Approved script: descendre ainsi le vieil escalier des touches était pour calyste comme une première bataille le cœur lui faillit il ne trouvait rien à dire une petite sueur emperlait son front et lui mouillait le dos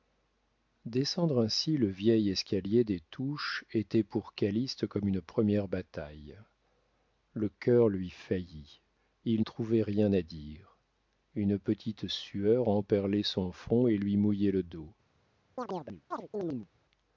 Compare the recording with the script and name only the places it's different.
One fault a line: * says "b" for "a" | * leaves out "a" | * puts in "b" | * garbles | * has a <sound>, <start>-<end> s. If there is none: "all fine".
* leaves out "ne"
* has a chirp, 15.6-16.7 s